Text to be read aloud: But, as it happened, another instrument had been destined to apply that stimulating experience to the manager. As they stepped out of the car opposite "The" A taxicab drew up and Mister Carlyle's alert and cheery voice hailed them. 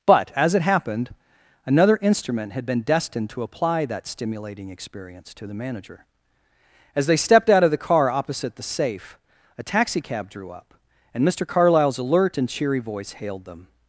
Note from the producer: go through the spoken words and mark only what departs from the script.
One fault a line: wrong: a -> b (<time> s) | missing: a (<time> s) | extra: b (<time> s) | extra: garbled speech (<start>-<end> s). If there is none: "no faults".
extra: Safe (8.6 s)